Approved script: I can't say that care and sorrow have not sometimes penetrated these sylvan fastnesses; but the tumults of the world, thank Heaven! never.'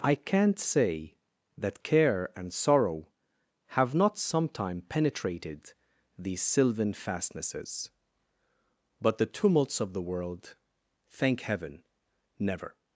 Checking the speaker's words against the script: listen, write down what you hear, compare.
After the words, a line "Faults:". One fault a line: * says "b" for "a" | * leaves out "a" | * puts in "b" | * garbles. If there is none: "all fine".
I can't say that care and sorrow have not sometime penetrated these sylvan fastnesses; but the tumults of the world, thank Heaven! never.'
Faults:
* says "sometime" for "sometimes"